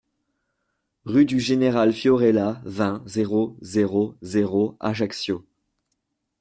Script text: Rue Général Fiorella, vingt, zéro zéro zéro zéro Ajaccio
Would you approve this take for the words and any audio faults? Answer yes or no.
no